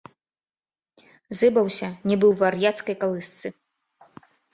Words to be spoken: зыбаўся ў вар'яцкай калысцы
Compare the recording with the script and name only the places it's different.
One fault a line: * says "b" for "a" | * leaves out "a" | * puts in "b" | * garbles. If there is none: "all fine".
* puts in "нібы"